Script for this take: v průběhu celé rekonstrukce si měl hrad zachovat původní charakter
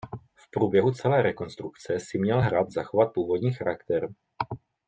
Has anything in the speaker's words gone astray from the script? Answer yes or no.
no